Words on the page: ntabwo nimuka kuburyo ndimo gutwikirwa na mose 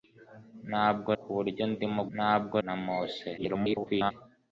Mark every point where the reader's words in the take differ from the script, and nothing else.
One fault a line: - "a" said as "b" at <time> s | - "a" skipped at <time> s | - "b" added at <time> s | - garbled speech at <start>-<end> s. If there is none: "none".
- "nimuka" skipped at 1.1 s
- "gutwikirwa" said as "ntabwo" at 2.1 s
- garbled speech at 3.4-4.1 s